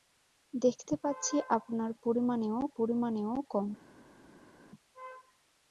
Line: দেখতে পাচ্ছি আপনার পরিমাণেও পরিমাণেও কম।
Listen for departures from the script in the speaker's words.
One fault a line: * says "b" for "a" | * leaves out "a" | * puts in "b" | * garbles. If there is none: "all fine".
all fine